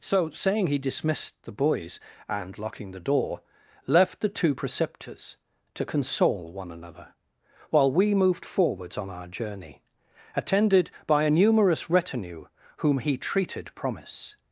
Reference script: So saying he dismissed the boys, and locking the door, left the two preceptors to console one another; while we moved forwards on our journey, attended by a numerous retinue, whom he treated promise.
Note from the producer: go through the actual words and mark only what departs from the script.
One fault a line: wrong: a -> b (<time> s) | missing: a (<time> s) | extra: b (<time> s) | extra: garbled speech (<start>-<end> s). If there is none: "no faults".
no faults